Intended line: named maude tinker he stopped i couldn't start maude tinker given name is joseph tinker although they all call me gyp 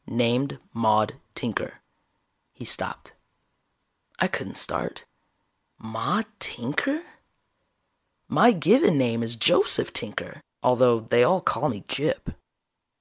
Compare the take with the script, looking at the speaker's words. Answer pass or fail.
fail